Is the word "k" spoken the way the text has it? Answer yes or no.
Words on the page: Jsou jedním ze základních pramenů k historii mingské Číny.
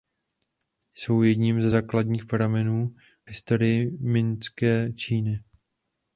no